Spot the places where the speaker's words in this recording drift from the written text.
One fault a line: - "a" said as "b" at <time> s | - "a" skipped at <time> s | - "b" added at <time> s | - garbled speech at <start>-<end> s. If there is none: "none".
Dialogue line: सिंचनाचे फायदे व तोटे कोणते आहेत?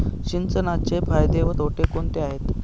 none